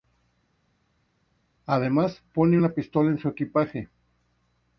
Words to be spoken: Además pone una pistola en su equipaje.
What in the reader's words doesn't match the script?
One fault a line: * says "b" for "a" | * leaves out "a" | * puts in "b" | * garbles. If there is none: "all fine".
all fine